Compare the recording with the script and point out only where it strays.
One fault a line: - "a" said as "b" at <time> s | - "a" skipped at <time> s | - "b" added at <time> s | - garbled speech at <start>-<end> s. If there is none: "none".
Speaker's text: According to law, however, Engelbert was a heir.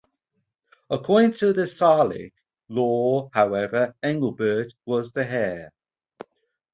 - "the Salic" added at 1.5 s
- "a" said as "the" at 5.1 s